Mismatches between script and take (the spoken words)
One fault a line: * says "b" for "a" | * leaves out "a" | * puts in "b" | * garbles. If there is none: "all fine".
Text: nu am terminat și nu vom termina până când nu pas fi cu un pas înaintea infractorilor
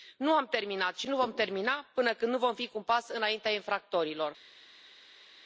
* says "vom" for "pas"